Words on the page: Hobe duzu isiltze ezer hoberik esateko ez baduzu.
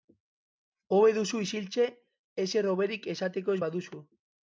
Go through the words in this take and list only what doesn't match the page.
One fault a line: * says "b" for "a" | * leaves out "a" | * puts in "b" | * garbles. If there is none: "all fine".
all fine